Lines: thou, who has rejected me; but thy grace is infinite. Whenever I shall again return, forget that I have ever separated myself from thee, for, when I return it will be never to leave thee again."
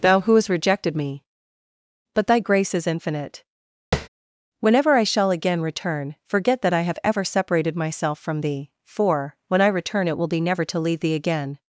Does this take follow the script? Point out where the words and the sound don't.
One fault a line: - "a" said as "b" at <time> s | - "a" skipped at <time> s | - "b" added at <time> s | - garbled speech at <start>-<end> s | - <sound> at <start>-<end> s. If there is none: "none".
- "has" said as "hast" at 0.3 s
- tap at 3.9-4.1 s